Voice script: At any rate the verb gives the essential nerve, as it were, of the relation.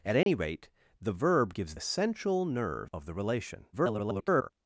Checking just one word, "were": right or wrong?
wrong